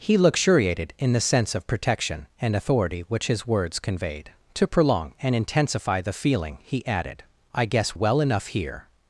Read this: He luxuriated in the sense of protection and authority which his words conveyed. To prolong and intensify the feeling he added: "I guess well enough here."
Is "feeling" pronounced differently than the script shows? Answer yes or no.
no